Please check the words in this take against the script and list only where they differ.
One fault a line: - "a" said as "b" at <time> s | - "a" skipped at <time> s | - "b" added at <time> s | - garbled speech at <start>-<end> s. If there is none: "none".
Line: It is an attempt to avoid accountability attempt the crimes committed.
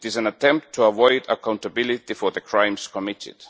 - "attempt" said as "for" at 2.1 s